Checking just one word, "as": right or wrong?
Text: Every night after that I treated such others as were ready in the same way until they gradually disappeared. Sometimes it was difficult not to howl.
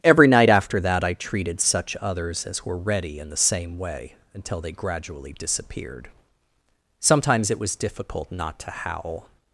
right